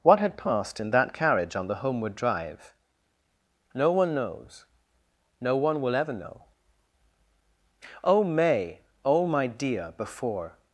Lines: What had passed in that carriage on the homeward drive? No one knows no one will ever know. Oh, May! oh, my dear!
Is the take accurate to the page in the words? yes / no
no